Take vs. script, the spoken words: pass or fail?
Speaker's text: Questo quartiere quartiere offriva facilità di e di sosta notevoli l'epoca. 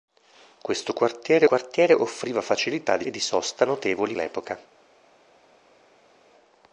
pass